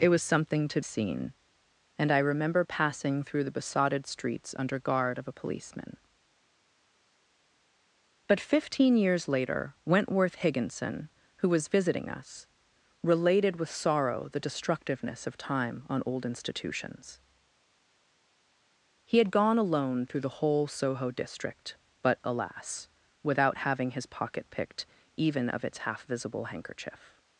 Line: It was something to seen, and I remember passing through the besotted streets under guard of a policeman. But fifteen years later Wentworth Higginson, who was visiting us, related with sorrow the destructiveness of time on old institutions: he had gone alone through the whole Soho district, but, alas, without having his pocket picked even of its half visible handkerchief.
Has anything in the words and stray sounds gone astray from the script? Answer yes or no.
no